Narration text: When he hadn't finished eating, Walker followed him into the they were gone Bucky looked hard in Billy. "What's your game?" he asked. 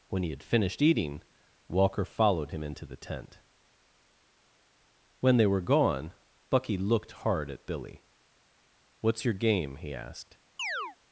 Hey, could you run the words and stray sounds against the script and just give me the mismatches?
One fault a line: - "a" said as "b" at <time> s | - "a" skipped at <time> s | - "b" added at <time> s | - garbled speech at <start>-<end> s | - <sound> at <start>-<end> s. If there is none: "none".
- "hadn't" said as "had" at 0.3 s
- "tent When" added at 3.0 s
- "in" said as "at" at 7.5 s
- chirp at 10.6-11.0 s